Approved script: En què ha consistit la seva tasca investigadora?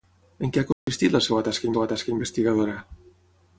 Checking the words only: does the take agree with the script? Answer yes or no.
no